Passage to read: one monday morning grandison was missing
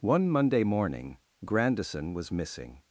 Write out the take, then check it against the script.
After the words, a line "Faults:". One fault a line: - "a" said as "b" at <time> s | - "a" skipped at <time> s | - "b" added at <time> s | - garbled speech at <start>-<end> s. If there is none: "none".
one monday morning grandison was missing
Faults:
none